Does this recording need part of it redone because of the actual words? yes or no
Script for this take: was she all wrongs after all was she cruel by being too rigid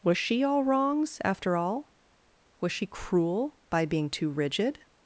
no